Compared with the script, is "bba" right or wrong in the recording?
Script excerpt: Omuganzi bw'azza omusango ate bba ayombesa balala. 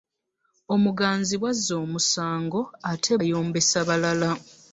wrong